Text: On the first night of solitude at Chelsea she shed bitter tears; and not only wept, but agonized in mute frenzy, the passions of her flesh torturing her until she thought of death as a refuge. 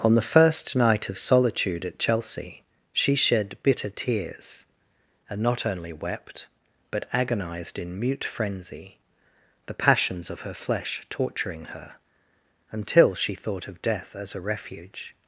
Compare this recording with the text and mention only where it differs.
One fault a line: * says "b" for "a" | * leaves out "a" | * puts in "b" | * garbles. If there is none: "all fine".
all fine